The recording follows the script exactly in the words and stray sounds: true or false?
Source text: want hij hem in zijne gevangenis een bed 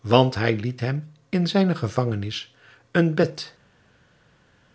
false